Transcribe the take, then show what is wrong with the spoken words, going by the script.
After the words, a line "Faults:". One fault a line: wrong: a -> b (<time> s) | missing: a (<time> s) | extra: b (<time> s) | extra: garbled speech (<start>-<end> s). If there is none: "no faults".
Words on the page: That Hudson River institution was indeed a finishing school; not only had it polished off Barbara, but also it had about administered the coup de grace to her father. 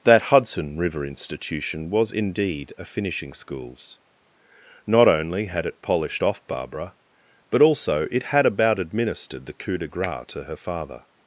That Hudson River institution was indeed a finishing schools; not only had it polished off Barbara, but also it had about administered the coup de grace to her father.
Faults:
wrong: school -> schools (3.3 s)